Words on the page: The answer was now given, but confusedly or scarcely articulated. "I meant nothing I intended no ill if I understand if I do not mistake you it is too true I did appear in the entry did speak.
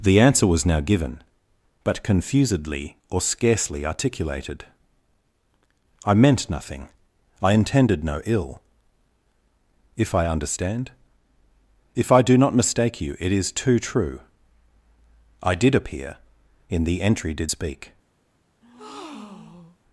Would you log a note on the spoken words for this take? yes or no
no